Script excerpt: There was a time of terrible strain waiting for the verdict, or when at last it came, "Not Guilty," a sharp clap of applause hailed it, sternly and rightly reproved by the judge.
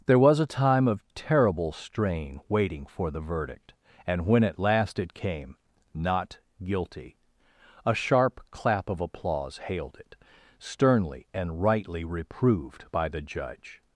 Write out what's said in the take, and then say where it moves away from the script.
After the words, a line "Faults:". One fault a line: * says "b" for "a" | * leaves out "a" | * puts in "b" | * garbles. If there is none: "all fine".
There was a time of terrible strain waiting for the verdict, and when at last it came, "Not Guilty," a sharp clap of applause hailed it, sternly and rightly reproved by the judge.
Faults:
* says "and" for "or"